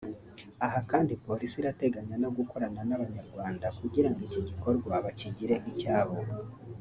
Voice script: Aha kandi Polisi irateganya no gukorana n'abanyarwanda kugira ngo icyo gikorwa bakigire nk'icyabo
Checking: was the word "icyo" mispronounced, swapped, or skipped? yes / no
yes